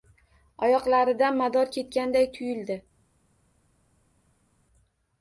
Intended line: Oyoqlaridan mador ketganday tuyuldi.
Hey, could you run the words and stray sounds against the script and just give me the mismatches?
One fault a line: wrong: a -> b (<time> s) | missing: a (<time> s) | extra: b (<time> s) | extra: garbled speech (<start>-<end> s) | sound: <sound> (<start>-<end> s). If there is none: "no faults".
no faults